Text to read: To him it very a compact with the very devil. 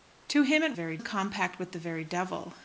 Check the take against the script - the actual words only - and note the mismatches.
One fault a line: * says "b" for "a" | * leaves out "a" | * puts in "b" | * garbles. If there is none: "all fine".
all fine